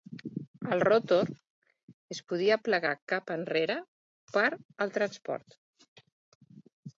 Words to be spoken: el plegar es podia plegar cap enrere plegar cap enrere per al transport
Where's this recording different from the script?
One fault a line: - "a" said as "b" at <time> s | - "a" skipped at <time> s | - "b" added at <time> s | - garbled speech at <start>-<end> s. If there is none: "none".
- "plegar" said as "rotor" at 0.8 s
- "plegar cap enrere" skipped at 3.8 s